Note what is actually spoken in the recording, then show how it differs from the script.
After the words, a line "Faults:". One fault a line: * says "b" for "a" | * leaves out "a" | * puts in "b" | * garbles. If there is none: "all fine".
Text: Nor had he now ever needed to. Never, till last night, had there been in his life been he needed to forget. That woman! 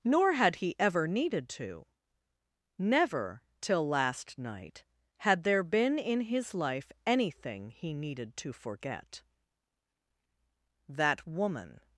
Nor had he ever needed to. Never, till last night, had there been in his life anything he needed to forget. That woman!
Faults:
* leaves out "now"
* says "anything" for "been"